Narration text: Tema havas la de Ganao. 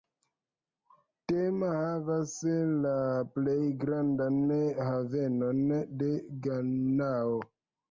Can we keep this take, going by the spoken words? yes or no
no